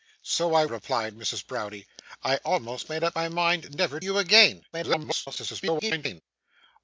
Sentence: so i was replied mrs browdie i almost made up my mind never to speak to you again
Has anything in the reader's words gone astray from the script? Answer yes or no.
yes